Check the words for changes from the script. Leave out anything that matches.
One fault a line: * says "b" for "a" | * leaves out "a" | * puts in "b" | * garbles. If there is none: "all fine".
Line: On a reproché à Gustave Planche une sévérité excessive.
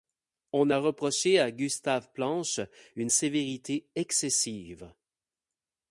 all fine